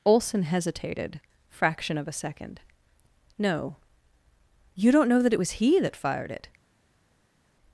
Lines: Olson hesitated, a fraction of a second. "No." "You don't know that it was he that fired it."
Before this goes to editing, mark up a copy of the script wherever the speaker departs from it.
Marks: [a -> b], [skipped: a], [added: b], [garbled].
Olson hesitated, [skipped: a] fraction of a second. "No." "You don't know that it was he that fired it."